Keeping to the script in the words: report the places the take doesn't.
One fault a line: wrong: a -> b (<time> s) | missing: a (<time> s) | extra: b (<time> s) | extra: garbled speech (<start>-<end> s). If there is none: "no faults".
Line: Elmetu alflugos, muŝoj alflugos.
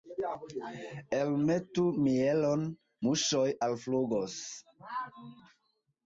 wrong: alflugos -> mielon (2.0 s)